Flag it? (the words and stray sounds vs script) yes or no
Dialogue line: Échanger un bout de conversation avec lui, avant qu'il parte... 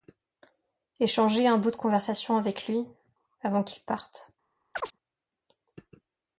yes